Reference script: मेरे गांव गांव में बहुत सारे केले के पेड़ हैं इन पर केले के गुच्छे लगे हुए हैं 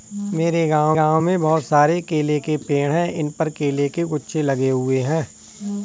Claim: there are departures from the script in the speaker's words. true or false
false